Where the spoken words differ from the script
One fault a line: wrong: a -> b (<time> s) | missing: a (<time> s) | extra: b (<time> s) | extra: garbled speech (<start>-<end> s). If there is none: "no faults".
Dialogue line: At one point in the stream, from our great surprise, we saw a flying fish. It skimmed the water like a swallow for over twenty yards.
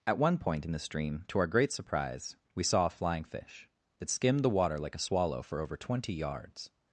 wrong: from -> to (1.3 s)